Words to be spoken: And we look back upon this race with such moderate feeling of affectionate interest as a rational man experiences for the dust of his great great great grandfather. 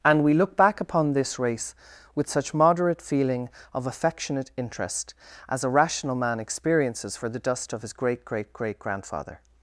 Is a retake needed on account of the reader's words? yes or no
no